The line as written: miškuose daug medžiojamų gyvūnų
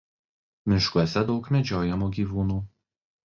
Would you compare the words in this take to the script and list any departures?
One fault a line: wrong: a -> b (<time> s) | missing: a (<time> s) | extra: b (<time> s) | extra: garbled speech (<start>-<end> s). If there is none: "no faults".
no faults